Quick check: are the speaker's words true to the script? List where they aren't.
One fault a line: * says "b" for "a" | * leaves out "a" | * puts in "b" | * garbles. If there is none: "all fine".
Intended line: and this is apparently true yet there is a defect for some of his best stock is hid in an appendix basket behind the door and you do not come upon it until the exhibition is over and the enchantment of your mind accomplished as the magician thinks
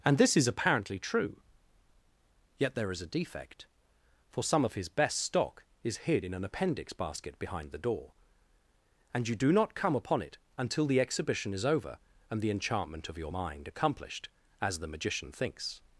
all fine